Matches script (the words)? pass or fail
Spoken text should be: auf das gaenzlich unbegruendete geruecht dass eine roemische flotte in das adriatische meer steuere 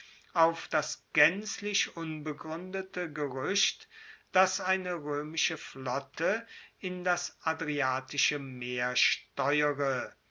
pass